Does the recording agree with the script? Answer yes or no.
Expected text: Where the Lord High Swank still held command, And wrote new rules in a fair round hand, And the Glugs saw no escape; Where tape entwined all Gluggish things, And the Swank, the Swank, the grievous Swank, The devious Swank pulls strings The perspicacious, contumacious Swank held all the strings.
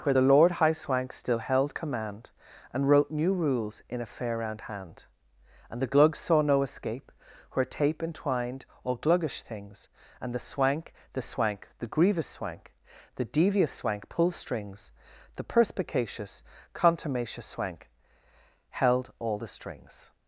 yes